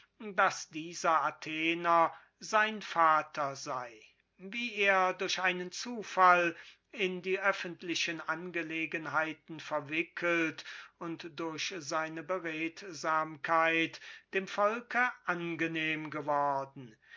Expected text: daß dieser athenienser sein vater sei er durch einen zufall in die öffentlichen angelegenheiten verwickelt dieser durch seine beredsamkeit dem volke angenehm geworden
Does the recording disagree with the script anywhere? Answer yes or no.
yes